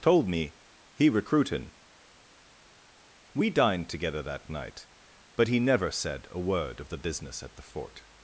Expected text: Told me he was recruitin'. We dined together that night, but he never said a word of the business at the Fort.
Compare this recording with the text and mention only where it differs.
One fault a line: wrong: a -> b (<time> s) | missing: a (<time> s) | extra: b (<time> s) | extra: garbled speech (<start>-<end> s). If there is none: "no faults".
missing: was (1.1 s)